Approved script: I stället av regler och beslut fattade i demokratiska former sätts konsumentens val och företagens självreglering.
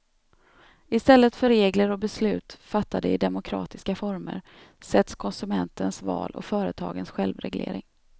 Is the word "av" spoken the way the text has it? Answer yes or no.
no